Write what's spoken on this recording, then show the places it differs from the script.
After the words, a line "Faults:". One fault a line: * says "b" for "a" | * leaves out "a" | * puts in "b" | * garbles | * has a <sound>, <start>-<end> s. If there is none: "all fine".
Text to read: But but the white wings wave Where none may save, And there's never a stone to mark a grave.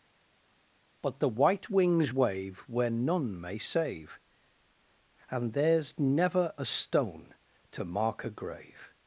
But the white wings wave Where none may save, And there's never a stone to mark a grave.
Faults:
* leaves out "but"